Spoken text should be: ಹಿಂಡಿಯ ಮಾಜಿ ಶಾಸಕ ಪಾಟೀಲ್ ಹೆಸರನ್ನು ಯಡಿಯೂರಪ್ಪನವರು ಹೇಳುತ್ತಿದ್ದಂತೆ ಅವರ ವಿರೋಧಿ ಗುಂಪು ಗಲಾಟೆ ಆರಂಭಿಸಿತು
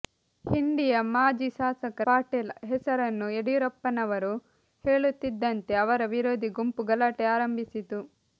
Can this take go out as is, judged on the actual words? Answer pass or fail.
pass